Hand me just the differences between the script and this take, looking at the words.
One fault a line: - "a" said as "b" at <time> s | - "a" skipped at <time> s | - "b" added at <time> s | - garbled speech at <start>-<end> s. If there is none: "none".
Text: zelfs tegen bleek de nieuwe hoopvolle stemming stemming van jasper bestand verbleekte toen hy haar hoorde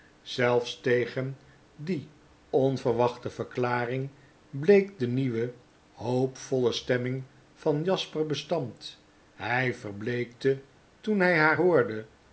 - "die onverwachte verklaring" added at 1.8 s
- "stemming" skipped at 7.2 s
- "hy" added at 9.3 s